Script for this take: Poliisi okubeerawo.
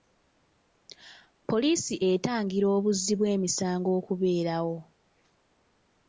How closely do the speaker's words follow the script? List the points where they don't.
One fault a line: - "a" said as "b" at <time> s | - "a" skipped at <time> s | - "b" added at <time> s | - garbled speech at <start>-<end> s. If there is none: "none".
- "etangira obuzzi bw'emisango" added at 2.1 s